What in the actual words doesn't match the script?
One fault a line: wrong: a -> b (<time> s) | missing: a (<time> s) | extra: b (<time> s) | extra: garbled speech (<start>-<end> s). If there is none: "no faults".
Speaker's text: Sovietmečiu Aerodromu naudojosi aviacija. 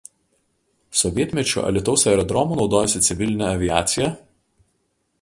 extra: Alytaus (1.7 s)
extra: civilinė (3.1 s)